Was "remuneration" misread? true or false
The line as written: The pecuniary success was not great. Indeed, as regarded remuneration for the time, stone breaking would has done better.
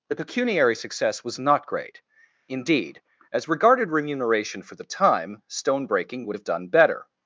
false